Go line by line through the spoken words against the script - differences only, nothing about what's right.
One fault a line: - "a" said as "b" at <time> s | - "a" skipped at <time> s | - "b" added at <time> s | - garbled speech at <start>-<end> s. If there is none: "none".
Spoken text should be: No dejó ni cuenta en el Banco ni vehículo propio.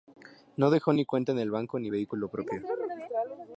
none